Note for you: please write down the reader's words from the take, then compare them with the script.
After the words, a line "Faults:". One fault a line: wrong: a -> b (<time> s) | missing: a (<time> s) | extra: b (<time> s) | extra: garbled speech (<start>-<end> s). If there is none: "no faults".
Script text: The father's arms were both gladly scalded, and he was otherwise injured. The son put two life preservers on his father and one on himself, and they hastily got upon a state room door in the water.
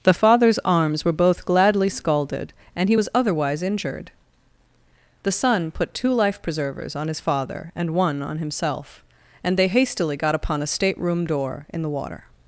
The father's arms were both gladly scalded, and he was otherwise injured. The son put two life preservers on his father and one on himself, and they hastily got upon a state room door in the water.
Faults:
no faults